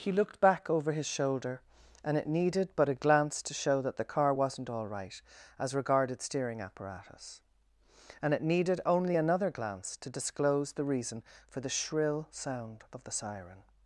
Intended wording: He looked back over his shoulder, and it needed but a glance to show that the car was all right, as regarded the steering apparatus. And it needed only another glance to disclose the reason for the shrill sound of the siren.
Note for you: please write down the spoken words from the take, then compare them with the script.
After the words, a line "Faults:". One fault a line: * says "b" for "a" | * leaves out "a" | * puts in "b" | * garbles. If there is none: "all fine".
He looked back over his shoulder, and it needed but a glance to show that the car wasn't all right, as regarded steering apparatus. And it needed only another glance to disclose the reason for the shrill sound of the siren.
Faults:
* says "wasn't" for "was"
* leaves out "the"